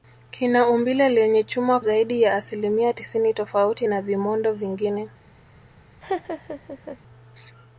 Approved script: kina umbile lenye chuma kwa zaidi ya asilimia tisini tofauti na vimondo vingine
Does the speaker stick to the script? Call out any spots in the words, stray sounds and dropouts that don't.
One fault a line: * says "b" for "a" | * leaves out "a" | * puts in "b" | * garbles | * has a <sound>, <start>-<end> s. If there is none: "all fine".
* leaves out "kwa"
* has a laugh, 6.0-7.0 s